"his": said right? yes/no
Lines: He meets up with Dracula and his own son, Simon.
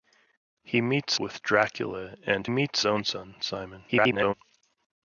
no